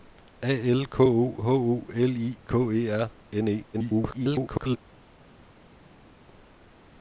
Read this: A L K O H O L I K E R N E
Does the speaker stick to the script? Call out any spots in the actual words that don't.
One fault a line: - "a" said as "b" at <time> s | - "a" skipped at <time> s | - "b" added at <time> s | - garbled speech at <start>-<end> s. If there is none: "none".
- garbled speech at 3.7-4.8 s